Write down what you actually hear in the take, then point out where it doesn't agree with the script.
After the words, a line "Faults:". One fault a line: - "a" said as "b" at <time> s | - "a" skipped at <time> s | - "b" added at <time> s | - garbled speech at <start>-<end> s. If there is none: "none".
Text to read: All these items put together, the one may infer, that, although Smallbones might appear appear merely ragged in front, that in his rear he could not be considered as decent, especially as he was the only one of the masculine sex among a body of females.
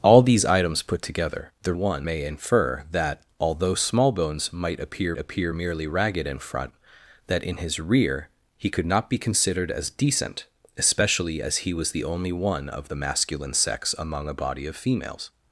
All these items put together, the one may infer, that, although Smallbones might appear appear merely ragged in front, that in his rear he could not be considered as decent, especially as he was the only one of the masculine sex among a body of females.
Faults:
none